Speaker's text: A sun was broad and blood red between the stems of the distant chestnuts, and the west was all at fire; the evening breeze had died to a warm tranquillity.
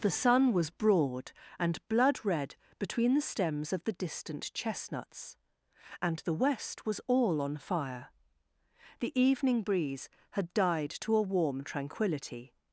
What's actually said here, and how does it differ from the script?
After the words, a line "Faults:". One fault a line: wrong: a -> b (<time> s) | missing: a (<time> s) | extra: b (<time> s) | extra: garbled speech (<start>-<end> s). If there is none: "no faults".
The sun was broad and blood red between the stems of the distant chestnuts, and the west was all on fire; the evening breeze had died to a warm tranquillity.
Faults:
wrong: A -> The (0.0 s)
wrong: at -> on (7.4 s)